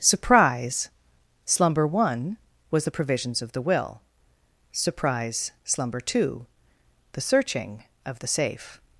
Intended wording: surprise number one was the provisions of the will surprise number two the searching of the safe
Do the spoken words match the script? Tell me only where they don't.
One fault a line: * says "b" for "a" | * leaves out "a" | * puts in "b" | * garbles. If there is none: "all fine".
* says "slumber" for "number"
* says "slumber" for "number"